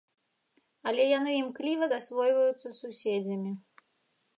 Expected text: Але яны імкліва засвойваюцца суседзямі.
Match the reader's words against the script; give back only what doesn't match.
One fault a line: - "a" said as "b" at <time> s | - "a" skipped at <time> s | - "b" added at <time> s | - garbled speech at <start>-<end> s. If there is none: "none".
none